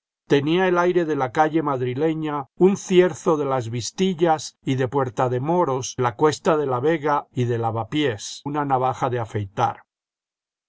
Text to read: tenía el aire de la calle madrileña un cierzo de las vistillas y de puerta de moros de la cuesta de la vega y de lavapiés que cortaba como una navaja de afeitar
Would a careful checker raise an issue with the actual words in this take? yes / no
yes